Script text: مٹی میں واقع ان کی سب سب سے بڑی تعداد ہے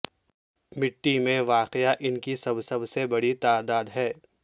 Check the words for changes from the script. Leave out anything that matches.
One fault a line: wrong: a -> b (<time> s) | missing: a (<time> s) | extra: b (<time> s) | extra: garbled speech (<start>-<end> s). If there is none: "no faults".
no faults